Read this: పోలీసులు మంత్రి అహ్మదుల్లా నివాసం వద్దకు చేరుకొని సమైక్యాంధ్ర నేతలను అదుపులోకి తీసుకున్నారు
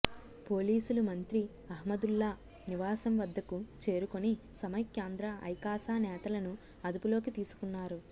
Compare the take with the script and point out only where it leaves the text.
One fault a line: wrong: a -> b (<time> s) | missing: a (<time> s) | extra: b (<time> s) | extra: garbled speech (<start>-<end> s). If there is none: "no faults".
extra: ఐకాస (5.5 s)